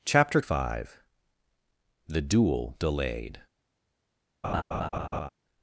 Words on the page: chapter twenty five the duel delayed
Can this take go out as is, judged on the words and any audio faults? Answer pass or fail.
fail